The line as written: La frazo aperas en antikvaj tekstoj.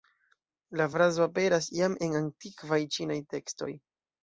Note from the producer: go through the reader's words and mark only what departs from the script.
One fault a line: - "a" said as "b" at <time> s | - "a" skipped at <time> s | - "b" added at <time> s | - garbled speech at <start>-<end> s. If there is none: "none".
- "jam" added at 1.8 s
- "ĉinaj" added at 3.0 s